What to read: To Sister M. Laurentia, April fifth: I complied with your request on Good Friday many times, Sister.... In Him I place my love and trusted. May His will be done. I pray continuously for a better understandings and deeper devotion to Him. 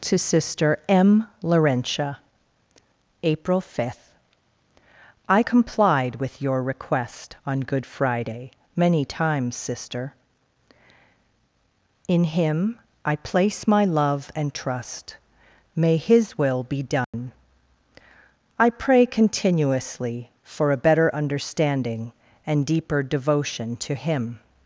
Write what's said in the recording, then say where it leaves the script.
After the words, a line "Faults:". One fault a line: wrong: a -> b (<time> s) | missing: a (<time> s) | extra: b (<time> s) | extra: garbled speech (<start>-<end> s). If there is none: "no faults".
To Sister M. Laurentia, April fifth: I complied with your request on Good Friday many times, Sister.... In Him I place my love and trust. May His will be done. I pray continuously for a better understanding and deeper devotion to Him.
Faults:
wrong: trusted -> trust (14.5 s)
wrong: understandings -> understanding (21.1 s)